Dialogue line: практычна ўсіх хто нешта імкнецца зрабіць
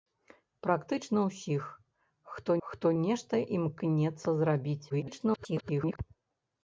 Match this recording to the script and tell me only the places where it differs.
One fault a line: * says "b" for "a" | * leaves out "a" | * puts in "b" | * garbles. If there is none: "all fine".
* puts in "хто"
* garbles